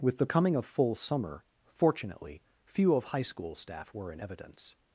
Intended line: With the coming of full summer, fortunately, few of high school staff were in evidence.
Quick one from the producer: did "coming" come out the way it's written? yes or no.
yes